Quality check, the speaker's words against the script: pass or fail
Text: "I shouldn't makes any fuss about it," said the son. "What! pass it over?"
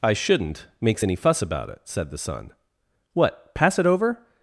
pass